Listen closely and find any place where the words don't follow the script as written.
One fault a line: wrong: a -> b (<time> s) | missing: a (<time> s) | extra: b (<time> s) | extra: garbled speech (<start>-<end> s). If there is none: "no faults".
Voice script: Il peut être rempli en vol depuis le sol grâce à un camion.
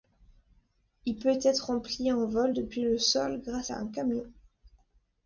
no faults